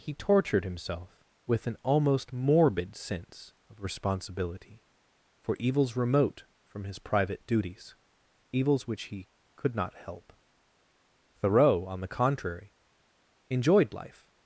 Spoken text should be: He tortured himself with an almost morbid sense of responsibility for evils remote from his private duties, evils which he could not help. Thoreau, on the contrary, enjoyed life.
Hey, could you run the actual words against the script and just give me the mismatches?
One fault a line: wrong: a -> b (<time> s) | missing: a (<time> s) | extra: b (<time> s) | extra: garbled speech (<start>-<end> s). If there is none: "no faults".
no faults